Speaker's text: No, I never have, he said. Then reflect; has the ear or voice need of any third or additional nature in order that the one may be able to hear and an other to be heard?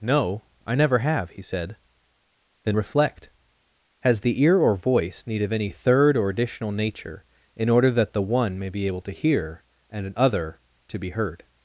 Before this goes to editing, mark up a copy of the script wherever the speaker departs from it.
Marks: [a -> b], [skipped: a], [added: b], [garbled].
No, I never have, he said. Then reflect; has the ear or voice need of any third or additional nature in order that the one may be able to hear and an other to be heard?